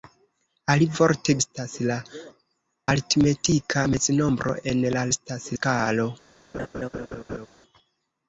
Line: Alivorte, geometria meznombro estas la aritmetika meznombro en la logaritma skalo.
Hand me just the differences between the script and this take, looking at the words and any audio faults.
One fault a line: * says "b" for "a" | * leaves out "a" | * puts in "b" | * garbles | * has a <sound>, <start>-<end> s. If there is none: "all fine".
* leaves out "geometria meznombro"
* says "estas" for "logaritma"
* has a laugh, 6.5-7.5 s